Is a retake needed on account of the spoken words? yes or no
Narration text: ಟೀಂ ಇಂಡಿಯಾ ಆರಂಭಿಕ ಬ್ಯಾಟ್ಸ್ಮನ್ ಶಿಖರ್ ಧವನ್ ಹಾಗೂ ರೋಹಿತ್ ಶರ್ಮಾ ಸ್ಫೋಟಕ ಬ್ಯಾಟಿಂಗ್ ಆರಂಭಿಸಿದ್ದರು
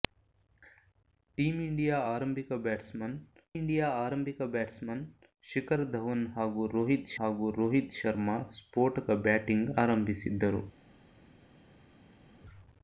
yes